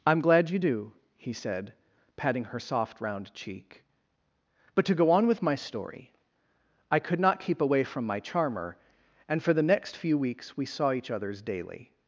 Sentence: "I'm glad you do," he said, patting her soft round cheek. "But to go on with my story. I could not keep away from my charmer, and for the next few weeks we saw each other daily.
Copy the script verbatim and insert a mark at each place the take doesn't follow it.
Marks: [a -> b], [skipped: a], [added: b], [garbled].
"I'm glad you do," he said, patting her soft round cheek. "But to go on with my story. I could not keep away from my charmer, and for the next few weeks we saw each [other -> others] daily.